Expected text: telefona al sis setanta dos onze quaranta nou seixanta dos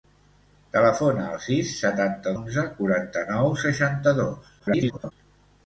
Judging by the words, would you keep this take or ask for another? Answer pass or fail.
fail